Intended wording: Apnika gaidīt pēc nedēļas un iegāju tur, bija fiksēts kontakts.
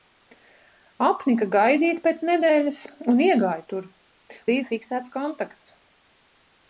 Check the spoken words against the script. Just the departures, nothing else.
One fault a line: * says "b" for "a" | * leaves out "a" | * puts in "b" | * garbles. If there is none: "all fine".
all fine